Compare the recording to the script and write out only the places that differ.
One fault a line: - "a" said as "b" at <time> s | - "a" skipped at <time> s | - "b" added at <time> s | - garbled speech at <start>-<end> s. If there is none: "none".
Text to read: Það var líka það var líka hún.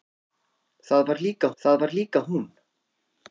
none